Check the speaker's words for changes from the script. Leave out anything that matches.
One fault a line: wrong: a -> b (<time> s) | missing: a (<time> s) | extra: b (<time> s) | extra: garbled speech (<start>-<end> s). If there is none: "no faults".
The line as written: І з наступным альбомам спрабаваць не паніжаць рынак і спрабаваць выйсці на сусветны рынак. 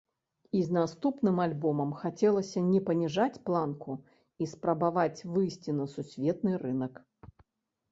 wrong: спрабаваць -> хацелася (2.0 s)
wrong: рынак -> планку (3.5 s)